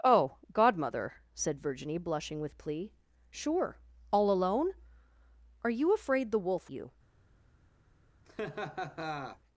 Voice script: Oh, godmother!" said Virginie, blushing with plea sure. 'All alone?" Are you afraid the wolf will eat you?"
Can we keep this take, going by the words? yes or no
no